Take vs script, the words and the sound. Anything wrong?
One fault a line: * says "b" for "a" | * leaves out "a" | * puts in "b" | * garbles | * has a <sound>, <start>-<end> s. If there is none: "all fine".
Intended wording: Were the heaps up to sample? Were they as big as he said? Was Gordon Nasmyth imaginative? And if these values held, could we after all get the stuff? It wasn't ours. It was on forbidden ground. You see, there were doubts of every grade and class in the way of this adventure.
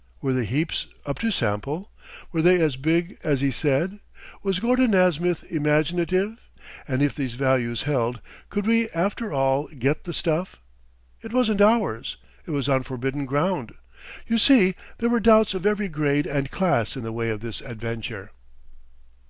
all fine